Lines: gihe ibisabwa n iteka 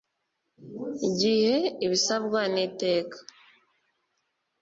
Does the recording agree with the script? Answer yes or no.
yes